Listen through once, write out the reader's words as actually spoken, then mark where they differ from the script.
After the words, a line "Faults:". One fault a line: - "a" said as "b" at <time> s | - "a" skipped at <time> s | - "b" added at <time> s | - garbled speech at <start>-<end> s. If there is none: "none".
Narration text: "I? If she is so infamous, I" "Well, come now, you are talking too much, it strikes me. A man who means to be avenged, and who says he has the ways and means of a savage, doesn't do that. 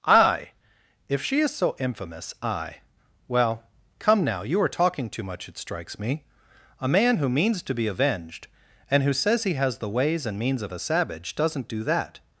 "I? If she is so infamous, I" "Well, come now, you are talking too much, it strikes me. A man who means to be avenged, and who says he has the ways and means of a savage, doesn't do that.
Faults:
none